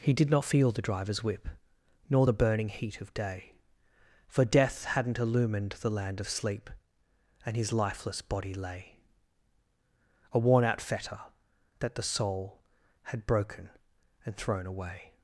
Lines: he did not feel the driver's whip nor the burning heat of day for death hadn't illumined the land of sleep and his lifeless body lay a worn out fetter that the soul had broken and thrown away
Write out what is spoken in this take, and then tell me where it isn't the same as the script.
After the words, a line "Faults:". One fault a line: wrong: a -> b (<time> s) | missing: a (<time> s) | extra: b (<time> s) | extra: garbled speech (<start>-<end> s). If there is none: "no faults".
he did not feel the driver's whip nor the burning heat of day for death hadn't illumined the land of sleep and his lifeless body lay a worn out fetter that the soul had broken and thrown away
Faults:
no faults